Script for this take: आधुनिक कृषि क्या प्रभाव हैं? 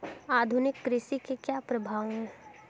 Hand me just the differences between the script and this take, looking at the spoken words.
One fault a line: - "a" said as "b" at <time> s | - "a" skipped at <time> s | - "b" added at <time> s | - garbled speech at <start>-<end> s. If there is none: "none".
- "के" added at 1.2 s